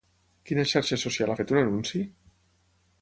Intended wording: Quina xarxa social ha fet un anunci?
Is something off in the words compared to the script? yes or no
no